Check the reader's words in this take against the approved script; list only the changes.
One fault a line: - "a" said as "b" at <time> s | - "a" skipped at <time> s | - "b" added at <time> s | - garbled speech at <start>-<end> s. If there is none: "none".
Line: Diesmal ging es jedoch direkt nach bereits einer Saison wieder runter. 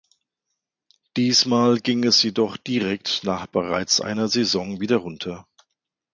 none